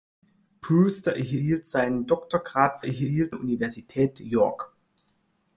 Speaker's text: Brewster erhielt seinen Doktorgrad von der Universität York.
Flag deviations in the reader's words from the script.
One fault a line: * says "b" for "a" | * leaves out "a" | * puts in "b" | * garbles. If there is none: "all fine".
* says "erhielt" for "von"